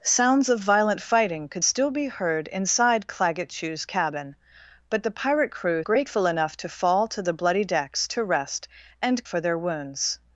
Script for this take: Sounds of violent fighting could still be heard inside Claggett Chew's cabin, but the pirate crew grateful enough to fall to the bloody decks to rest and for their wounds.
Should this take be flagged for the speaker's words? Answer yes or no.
no